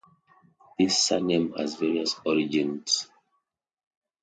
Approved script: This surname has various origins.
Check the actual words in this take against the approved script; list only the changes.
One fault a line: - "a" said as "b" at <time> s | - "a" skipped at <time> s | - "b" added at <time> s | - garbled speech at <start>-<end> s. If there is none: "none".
none